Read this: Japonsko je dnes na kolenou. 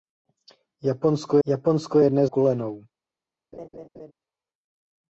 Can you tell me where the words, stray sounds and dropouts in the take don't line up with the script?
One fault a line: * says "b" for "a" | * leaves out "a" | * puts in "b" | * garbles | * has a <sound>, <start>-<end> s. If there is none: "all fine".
* puts in "japonsko"
* leaves out "na"
* has a laugh, 3.5-4.1 s